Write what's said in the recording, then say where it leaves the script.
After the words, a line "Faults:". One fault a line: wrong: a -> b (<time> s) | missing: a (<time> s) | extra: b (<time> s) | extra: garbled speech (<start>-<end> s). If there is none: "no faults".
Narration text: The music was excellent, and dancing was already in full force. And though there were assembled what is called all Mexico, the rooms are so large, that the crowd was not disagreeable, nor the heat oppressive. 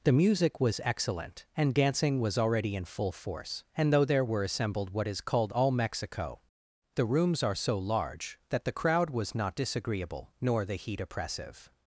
The music was excellent, and dancing was already in full force. And though there were assembled what is called all Mexico, the rooms are so large, that the crowd was not disagreeable, nor the heat oppressive.
Faults:
no faults